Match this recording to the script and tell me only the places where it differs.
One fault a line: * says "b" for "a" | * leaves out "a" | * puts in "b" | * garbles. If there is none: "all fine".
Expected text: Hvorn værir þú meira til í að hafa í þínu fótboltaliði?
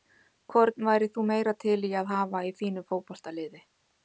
all fine